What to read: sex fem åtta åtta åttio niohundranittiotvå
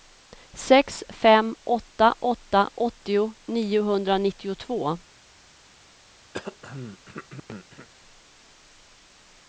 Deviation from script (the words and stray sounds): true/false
true